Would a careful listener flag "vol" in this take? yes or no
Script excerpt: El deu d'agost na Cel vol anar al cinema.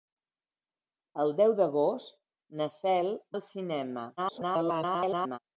yes